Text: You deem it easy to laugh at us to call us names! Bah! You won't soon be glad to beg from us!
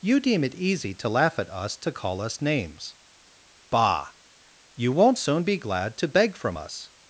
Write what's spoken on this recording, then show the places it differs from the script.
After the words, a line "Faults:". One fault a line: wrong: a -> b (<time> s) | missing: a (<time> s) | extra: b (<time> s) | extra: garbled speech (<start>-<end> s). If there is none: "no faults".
You deem it easy to laugh at us to call us names! Bah! You won't soon be glad to beg from us!
Faults:
no faults